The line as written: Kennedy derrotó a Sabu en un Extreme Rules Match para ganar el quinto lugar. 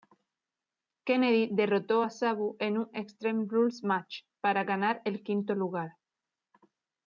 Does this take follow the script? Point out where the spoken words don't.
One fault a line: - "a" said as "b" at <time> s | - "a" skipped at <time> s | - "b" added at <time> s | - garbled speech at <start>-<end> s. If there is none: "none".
none